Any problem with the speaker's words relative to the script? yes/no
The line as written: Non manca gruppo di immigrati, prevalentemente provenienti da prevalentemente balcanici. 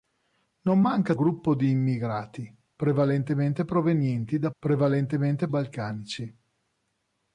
no